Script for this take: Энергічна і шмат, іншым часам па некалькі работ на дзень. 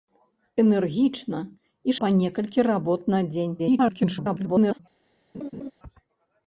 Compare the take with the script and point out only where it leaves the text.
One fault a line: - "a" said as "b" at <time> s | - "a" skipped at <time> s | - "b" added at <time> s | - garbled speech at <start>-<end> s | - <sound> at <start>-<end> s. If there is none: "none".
- "шмат іншым часам" skipped at 1.9 s
- garbled speech at 3.6-4.8 s
- laugh at 5.3-5.7 s